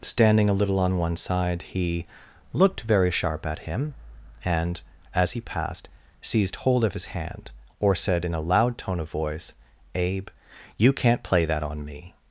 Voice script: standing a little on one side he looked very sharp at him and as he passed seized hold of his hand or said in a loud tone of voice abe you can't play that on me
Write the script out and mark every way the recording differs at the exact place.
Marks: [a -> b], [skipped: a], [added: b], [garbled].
standing a little on one side he looked very sharp at him and as he passed seized hold of his hand or said in a loud tone of voice abe you can't play that on me